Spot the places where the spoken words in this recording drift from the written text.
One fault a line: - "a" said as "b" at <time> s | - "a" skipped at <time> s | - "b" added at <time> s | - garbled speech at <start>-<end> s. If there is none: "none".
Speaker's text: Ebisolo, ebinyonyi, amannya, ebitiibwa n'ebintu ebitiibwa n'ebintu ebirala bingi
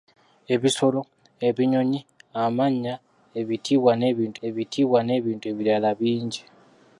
none